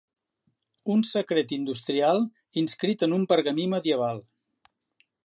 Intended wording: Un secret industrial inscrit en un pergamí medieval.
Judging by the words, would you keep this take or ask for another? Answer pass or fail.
pass